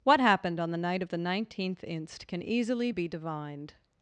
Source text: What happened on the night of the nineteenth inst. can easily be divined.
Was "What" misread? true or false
false